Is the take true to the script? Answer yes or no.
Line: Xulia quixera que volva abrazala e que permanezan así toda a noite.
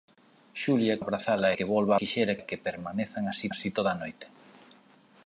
no